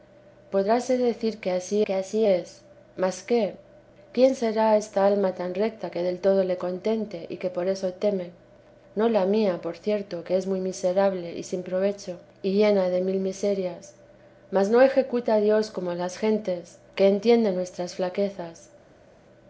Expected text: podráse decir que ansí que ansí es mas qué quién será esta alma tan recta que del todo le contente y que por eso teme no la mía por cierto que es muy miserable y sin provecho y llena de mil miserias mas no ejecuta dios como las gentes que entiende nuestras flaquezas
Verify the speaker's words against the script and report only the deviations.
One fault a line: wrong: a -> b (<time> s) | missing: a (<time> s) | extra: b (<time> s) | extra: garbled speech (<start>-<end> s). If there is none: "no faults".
no faults